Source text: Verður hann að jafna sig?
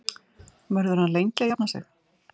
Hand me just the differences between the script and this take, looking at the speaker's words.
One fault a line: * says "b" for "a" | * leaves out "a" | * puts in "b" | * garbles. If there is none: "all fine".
* puts in "lengi"